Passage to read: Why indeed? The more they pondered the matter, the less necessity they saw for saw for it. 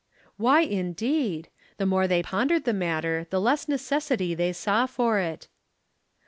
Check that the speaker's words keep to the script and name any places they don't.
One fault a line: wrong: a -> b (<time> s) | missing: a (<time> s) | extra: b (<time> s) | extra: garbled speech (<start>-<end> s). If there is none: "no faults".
missing: saw for (5.2 s)